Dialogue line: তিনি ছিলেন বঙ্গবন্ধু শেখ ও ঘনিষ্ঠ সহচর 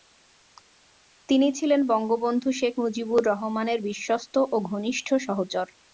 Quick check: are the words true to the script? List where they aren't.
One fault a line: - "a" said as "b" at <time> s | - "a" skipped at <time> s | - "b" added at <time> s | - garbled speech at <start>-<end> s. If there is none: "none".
- "মুজিবুর রহমানের বিশ্বস্ত" added at 2.8 s